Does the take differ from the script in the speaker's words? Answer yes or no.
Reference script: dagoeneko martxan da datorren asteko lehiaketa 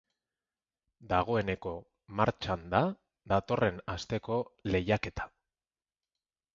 no